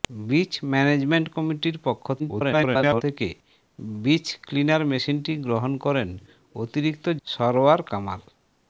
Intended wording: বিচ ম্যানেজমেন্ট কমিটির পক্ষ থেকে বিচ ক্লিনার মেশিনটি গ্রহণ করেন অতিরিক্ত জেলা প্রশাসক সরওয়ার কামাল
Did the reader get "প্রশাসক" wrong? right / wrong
wrong